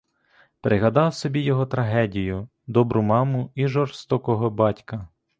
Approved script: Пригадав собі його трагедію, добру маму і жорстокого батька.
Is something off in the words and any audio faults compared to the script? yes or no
no